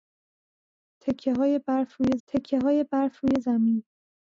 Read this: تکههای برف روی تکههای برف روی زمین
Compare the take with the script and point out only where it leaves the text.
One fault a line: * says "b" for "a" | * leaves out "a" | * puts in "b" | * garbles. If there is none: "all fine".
all fine